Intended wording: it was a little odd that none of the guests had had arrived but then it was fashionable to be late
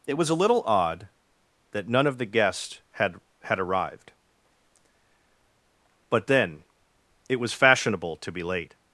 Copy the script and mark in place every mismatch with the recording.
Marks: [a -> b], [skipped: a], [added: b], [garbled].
it was a little odd that none of the guests had had arrived but then it was fashionable to be late